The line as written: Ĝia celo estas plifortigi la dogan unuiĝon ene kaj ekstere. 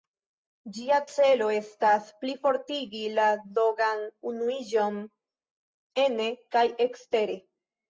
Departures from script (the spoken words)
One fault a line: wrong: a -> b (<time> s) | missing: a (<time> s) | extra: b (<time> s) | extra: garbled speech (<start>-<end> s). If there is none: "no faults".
no faults